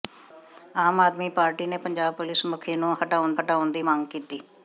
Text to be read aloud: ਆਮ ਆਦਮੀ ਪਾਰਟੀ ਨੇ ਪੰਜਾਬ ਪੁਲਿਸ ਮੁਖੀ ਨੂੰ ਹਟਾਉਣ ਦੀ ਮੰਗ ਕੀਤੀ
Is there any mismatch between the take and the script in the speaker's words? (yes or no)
yes